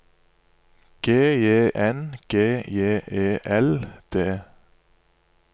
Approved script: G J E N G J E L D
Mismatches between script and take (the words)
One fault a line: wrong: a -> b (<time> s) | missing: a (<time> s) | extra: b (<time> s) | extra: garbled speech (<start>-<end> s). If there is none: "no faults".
missing: E (1.7 s)